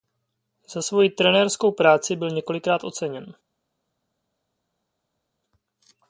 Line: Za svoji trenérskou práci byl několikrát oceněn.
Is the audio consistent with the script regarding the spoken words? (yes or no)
yes